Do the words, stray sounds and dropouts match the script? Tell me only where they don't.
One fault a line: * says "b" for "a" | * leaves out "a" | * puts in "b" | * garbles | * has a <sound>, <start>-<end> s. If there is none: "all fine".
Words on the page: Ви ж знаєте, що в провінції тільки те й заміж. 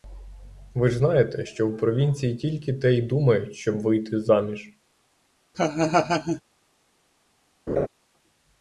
* puts in "думають щоб вийти"
* has a laugh, 5.5-6.4 s
* has a laugh, 7.7-7.9 s